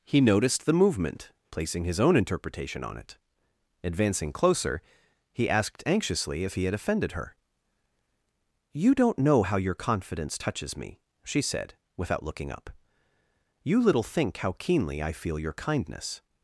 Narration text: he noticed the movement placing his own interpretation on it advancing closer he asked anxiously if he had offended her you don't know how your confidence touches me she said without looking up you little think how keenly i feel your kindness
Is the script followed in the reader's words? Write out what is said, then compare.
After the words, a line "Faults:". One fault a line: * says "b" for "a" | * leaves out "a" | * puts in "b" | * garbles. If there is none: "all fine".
he noticed the movement placing his own interpretation on it advancing closer he asked anxiously if he had offended her you don't know how your confidence touches me she said without looking up you little think how keenly i feel your kindness
Faults:
all fine